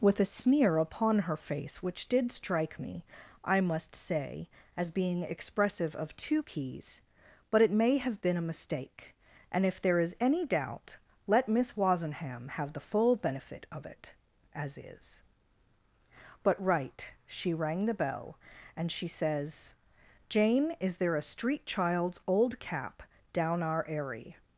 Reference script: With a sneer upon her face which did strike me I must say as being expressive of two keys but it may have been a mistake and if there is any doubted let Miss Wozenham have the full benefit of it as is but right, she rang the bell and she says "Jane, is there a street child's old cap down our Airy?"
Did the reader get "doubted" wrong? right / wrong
wrong